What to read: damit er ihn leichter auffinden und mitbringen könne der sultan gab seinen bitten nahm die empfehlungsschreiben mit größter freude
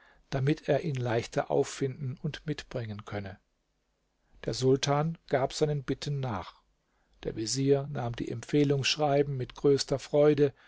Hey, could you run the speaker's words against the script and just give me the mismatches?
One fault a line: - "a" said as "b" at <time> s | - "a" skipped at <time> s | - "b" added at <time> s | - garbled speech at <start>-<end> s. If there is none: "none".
- "nach der vezier" added at 6.2 s